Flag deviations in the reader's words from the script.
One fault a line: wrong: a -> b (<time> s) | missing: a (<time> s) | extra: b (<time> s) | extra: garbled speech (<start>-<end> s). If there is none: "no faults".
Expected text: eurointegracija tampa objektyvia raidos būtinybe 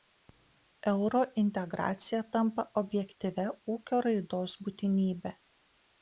extra: ūkio (3.7 s)